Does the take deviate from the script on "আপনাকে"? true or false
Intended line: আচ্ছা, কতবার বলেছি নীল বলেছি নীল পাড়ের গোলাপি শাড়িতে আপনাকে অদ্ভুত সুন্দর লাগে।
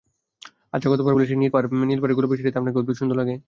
false